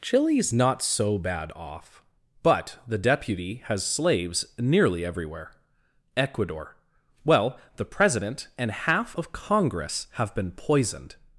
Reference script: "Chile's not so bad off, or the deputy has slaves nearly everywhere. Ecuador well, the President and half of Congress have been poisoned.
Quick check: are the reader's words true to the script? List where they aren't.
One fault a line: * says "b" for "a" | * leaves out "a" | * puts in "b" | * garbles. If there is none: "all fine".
* says "but" for "or"